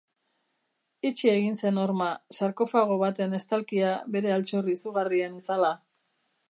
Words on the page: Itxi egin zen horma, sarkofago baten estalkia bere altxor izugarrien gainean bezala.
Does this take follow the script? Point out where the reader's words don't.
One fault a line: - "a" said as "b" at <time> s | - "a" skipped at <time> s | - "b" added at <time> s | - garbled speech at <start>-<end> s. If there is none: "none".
- "gainean" skipped at 5.4 s